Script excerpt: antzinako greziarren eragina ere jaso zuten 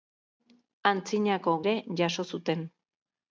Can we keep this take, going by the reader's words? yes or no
no